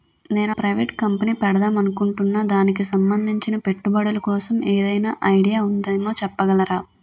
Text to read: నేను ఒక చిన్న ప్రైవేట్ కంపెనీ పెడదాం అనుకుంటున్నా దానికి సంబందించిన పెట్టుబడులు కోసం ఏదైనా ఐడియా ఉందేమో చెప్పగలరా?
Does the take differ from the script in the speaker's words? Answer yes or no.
yes